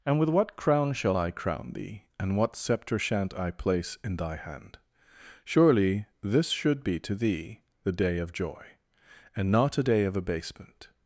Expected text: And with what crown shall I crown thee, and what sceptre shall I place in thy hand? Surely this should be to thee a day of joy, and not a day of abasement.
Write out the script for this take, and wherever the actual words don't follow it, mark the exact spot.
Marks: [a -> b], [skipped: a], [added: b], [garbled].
And with what crown shall I crown thee, and what sceptre [shall -> shan't] I place in thy hand? Surely this should be to thee [a -> the] day of joy, and not a day of abasement.